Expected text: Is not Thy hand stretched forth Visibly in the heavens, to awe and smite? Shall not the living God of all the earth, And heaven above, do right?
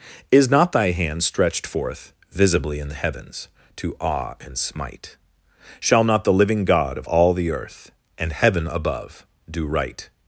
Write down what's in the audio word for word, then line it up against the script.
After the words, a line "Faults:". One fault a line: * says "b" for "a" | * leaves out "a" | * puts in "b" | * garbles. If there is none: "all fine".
Is not Thy hand stretched forth Visibly in the heavens, to awe and smite? Shall not the living God of all the earth, And heaven above, do right?
Faults:
all fine